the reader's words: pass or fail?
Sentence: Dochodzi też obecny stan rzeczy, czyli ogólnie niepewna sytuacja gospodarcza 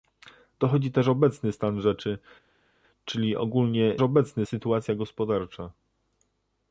fail